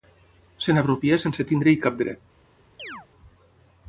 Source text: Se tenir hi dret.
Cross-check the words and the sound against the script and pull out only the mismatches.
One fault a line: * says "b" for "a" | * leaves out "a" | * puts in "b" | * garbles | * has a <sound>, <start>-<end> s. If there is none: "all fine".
* puts in "n'apropia sense"
* puts in "cap"
* has a chirp, 2.8-3.1 s